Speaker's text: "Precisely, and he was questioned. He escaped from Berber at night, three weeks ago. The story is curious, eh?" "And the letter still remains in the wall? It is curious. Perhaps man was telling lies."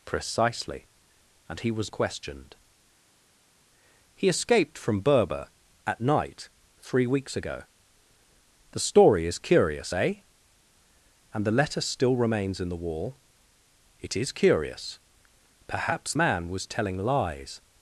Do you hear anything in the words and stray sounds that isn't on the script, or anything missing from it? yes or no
no